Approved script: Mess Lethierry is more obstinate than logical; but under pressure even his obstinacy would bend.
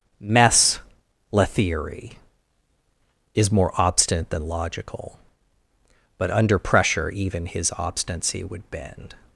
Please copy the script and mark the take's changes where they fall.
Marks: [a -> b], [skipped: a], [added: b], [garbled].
Mess Lethierry is more obstinate than logical; but under pressure even his obstinacy would bend.